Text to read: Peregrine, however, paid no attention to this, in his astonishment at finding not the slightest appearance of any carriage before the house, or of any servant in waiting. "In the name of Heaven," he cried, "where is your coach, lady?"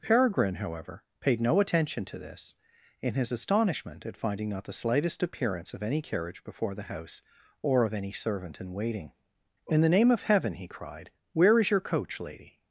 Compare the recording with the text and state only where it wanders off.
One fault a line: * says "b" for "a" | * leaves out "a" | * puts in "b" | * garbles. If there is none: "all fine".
all fine